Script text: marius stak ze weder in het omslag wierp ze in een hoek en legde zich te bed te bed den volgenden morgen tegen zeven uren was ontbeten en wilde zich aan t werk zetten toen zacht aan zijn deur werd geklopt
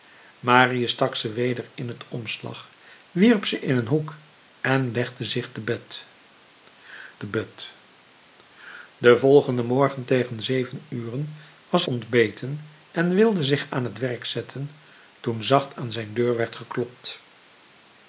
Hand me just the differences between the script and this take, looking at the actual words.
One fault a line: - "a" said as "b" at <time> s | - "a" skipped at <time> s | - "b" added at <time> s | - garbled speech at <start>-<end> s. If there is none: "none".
none